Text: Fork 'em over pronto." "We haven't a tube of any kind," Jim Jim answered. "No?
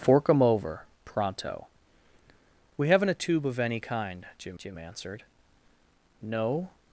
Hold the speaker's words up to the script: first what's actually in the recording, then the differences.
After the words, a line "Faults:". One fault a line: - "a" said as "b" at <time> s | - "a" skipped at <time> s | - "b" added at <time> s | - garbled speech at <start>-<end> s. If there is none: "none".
Fork 'em over pronto." "We haven't a tube of any kind," Jim Jim answered. "No?
Faults:
none